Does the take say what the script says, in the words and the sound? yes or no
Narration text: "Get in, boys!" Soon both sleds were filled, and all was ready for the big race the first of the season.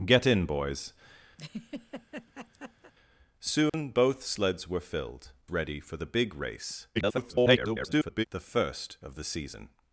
no